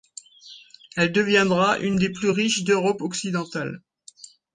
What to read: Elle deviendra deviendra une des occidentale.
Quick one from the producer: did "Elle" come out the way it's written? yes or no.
yes